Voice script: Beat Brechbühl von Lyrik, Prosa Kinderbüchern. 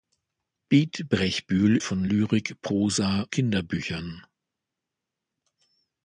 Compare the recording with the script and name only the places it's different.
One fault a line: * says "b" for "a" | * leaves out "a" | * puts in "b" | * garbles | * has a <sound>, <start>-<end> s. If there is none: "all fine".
all fine